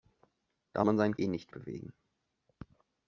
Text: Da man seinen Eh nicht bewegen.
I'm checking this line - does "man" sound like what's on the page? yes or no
yes